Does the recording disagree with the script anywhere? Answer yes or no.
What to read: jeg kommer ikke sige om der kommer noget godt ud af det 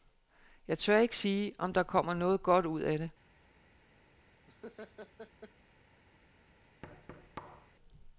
yes